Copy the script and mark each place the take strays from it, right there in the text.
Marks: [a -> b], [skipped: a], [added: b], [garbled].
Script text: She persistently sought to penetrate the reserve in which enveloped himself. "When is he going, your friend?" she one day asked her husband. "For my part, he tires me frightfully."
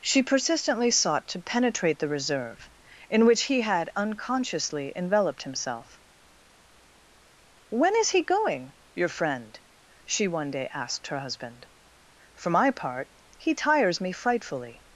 She persistently sought to penetrate the reserve in which [added: he had unconsciously] enveloped himself. "When is he going, your friend?" she one day asked her husband. "For my part, he tires me frightfully."